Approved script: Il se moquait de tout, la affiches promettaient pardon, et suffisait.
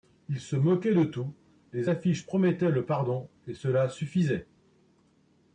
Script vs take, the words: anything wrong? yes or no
yes